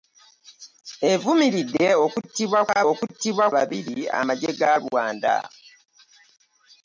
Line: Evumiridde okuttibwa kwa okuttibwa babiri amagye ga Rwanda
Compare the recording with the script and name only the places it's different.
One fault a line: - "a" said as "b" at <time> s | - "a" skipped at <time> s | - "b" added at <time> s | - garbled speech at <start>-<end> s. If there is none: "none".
none